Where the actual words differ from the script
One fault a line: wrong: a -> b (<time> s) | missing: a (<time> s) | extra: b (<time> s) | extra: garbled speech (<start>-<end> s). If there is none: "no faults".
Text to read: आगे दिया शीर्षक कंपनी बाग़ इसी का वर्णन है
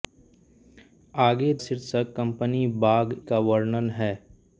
missing: दिया (1.5 s)
missing: इसी (3.1 s)